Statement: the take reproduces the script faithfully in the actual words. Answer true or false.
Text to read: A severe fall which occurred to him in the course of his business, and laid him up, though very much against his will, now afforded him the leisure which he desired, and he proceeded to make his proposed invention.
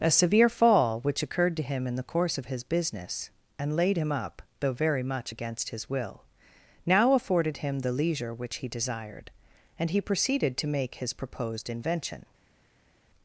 true